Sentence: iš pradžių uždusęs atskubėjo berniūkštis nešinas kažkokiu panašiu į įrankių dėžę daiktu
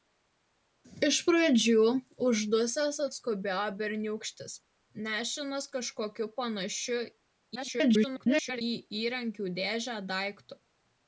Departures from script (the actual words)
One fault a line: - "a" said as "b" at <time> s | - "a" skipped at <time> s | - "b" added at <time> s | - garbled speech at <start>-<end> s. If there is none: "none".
- garbled speech at 7.6-8.6 s